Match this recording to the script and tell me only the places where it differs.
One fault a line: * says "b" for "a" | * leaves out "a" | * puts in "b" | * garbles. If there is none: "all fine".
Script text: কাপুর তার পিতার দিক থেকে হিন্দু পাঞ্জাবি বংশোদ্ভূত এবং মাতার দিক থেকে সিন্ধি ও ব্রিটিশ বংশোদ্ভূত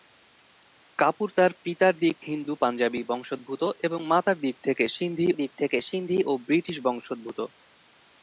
* leaves out "থেকে"
* puts in "দিক থেকে সিন্ধি"